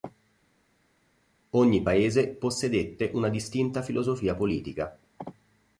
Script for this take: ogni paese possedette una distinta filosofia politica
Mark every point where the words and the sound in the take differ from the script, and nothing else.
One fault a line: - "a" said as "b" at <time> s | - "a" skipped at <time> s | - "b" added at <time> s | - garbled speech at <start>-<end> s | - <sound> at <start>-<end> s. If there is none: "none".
none